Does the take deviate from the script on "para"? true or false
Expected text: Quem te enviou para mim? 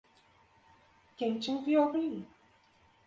true